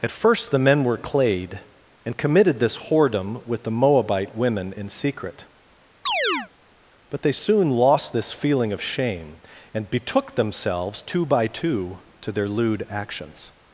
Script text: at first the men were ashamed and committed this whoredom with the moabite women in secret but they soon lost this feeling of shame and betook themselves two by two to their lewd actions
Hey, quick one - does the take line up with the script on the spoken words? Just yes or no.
no